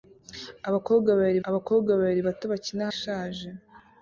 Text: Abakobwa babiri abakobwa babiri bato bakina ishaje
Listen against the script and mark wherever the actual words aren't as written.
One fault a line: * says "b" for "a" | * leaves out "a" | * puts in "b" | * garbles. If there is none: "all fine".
all fine